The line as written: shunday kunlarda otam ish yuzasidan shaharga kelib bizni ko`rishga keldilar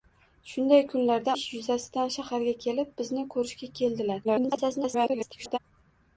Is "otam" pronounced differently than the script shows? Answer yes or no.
yes